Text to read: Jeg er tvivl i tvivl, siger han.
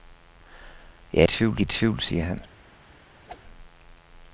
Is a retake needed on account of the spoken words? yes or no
no